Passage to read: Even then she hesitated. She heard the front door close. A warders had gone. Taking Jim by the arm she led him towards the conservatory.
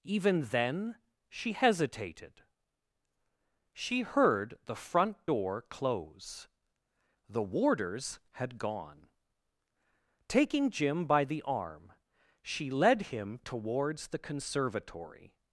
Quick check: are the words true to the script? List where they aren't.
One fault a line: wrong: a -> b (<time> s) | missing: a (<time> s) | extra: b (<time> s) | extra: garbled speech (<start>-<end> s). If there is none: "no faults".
wrong: A -> The (7.3 s)